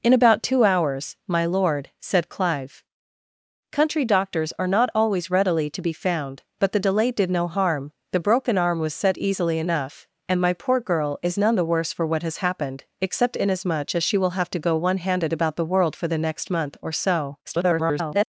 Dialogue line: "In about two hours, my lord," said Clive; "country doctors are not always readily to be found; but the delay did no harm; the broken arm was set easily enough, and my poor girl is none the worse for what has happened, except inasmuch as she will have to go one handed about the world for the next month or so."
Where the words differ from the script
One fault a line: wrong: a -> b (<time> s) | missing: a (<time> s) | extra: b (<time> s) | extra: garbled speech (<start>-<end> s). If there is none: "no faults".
extra: garbled speech (17.4-18.3 s)